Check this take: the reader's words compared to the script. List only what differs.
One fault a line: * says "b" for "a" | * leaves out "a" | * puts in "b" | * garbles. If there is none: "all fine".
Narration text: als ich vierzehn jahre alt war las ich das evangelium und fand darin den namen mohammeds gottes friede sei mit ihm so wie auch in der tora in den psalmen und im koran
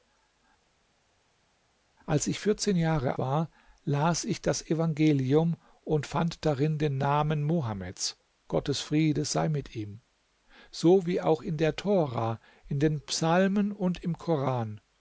* leaves out "alt"